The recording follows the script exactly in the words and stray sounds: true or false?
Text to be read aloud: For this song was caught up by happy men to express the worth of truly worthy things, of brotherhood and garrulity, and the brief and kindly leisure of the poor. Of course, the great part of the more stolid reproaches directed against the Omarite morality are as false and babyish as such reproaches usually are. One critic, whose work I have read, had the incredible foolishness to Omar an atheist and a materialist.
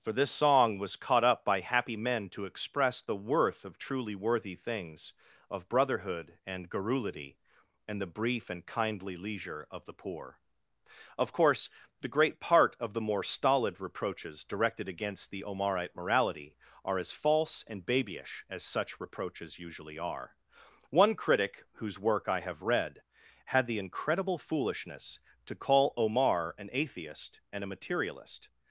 false